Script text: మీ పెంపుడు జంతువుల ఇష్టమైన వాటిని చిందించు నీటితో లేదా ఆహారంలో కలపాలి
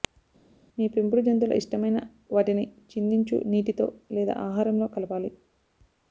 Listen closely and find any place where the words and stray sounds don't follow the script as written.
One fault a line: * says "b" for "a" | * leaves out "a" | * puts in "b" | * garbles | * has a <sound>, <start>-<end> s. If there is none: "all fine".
all fine